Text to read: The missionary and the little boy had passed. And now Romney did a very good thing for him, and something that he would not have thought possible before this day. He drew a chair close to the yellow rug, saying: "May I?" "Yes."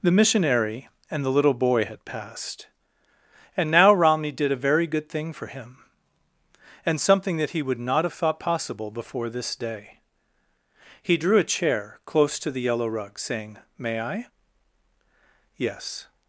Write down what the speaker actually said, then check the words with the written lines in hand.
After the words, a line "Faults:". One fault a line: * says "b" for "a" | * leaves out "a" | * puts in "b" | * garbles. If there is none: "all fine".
The missionary and the little boy had passed. And now Romney did a very good thing for him, and something that he would not have thought possible before this day. He drew a chair close to the yellow rug, saying: "May I?" "Yes."
Faults:
all fine